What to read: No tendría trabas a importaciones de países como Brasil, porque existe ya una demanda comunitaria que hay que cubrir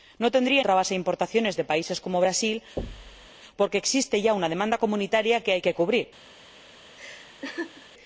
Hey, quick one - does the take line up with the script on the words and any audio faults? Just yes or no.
no